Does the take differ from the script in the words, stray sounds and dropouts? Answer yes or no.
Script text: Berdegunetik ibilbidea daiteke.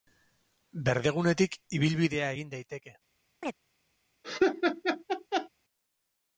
yes